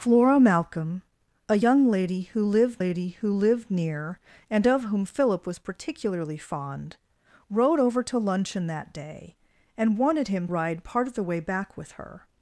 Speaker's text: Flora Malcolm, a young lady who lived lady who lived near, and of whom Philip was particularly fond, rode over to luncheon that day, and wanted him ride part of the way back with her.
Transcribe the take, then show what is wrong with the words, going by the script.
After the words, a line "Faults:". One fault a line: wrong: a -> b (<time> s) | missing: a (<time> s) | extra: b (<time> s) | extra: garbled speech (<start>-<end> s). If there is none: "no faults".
Flora Malcolm, a young lady who lived lady who lived near, and of whom Philip was particularly fond, rode over to luncheon that day, and wanted him ride part of the way back with her.
Faults:
no faults